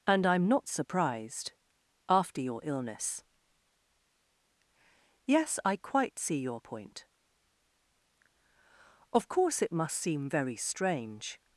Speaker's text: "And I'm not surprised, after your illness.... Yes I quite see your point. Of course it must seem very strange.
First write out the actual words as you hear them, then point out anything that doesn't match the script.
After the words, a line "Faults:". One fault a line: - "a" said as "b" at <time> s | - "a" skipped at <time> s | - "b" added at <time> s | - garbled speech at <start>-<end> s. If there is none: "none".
"And I'm not surprised, after your illness.... Yes I quite see your point. Of course it must seem very strange.
Faults:
none